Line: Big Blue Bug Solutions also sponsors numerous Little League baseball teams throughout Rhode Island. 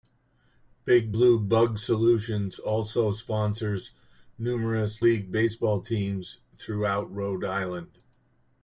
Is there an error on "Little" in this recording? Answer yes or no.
yes